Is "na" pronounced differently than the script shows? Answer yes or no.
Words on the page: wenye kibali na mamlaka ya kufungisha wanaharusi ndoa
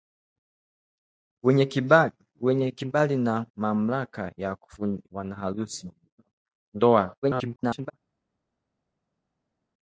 no